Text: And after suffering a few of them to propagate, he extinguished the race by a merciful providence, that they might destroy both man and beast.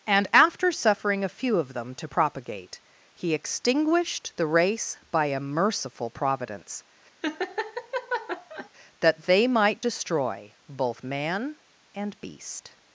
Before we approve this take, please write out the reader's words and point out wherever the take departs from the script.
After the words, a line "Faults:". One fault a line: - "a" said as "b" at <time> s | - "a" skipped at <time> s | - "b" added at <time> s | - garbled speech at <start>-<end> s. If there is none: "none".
And after suffering a few of them to propagate, he extinguished the race by a merciful providence, that they might destroy both man and beast.
Faults:
none